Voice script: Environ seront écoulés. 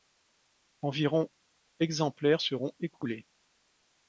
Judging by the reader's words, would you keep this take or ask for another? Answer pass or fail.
fail